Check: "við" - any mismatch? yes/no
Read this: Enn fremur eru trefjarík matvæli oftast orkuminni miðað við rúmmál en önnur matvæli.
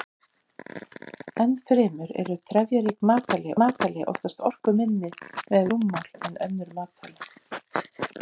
yes